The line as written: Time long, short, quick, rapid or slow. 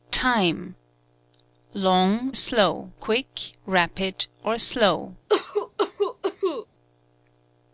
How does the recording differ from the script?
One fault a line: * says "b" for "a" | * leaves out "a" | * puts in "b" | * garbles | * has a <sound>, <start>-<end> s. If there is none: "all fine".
* says "slow" for "short"
* has a cough, 5.3-6.7 s